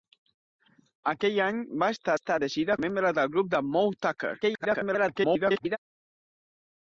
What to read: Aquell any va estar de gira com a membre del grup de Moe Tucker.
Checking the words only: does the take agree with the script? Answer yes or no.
no